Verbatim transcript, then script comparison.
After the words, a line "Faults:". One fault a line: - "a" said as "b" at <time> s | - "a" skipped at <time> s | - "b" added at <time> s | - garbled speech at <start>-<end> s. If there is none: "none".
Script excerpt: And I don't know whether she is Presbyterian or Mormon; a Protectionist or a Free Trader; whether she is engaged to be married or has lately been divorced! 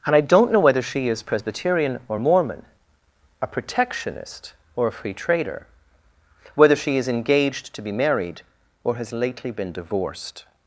And I don't know whether she is Presbyterian or Mormon; a Protectionist or a Free Trader; whether she is engaged to be married or has lately been divorced!
Faults:
none